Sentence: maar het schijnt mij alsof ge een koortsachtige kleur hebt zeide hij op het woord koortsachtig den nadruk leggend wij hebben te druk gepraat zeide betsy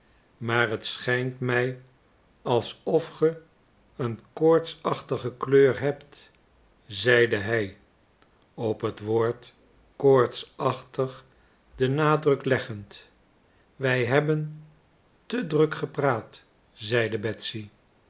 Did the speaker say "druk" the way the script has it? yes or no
yes